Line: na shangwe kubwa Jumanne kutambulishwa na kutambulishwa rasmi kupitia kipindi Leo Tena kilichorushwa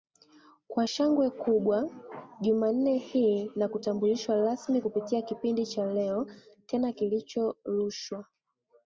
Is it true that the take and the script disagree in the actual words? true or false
true